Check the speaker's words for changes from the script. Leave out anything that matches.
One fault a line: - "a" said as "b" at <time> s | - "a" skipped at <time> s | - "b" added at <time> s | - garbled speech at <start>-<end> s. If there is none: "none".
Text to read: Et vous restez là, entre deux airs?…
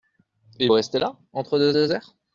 - "vous" skipped at 0.7 s
- "deux" added at 1.7 s